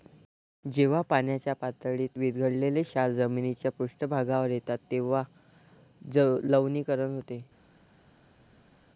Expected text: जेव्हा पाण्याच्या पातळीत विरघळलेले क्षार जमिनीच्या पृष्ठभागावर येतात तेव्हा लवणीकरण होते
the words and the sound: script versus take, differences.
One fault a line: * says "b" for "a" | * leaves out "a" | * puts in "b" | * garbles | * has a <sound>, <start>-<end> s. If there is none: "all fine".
all fine